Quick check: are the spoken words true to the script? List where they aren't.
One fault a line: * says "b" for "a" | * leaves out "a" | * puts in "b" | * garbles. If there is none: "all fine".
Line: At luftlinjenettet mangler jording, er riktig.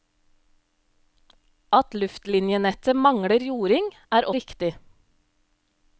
all fine